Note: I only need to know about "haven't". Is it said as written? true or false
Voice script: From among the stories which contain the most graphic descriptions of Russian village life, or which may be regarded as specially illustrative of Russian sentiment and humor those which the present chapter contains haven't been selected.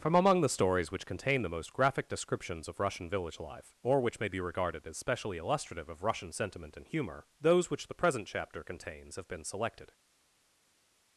false